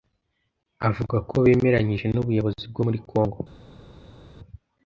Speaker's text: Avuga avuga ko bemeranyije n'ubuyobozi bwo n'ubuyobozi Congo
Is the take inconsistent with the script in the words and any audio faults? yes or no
yes